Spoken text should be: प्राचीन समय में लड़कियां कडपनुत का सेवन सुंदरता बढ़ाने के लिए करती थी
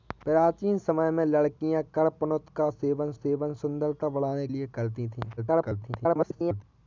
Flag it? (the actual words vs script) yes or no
yes